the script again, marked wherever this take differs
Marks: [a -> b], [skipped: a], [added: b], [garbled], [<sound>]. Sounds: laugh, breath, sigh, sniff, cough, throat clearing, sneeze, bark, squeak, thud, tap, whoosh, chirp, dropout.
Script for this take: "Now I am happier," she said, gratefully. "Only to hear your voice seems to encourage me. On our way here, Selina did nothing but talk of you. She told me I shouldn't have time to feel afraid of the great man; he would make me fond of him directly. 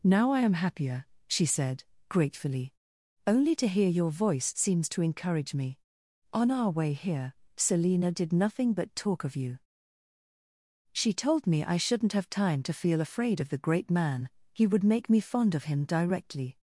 "Now I am happier," she said, gratefully. "Only to hear your voice seems to encourage me. On our way here, Selina did nothing but talk of you. She told me I shouldn't have time to feel afraid of the great man; he would make me fond of him directly.